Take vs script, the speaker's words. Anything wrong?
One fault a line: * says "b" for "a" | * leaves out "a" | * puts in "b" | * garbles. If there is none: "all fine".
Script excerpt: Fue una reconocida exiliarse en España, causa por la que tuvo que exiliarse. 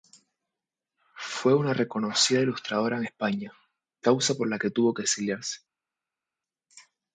* says "ilustradora" for "exiliarse"